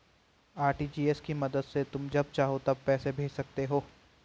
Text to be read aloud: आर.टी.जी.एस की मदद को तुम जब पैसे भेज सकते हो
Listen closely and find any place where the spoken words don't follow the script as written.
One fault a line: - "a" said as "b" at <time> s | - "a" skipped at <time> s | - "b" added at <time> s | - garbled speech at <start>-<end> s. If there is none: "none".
- "को" said as "से" at 1.6 s
- "चाहो तब" added at 2.3 s